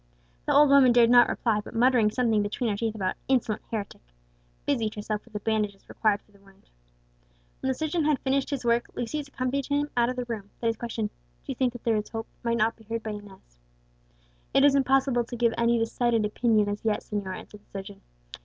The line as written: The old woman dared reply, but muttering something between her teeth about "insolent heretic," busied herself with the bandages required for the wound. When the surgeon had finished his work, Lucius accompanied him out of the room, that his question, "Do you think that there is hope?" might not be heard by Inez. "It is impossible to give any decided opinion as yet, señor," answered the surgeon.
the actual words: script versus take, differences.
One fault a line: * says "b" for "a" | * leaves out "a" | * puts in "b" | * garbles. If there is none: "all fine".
* puts in "not"